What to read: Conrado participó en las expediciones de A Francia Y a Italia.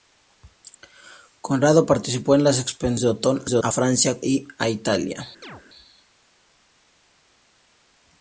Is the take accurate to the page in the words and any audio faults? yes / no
no